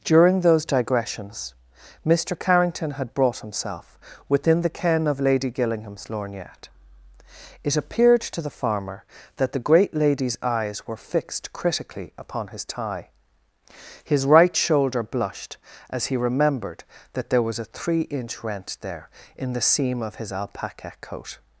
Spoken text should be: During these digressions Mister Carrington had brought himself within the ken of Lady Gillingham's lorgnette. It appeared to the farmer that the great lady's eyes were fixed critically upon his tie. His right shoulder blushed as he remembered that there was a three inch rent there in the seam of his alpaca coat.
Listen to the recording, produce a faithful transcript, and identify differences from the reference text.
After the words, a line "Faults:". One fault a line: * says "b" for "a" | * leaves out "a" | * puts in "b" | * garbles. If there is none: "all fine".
During those digressions Mister Carrington had brought himself within the ken of Lady Gillingham's lorgnette. It appeared to the farmer that the great lady's eyes were fixed critically upon his tie. His right shoulder blushed as he remembered that there was a three inch rent there in the seam of his alpaca coat.
Faults:
* says "those" for "these"